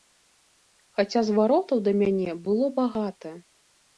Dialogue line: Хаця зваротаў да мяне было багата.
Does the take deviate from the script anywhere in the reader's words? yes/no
no